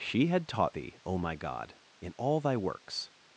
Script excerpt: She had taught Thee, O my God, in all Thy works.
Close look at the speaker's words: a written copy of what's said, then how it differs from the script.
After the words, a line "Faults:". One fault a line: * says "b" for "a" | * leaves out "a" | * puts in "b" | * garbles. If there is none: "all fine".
She had taught Thee, O my God, in all Thy works.
Faults:
all fine